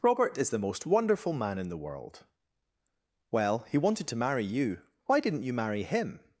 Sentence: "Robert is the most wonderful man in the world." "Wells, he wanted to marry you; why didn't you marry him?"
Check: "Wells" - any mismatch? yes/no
yes